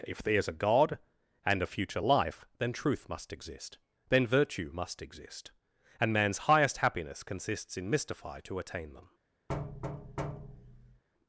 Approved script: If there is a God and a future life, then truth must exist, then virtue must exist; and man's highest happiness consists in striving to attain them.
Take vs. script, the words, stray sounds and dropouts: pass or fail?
fail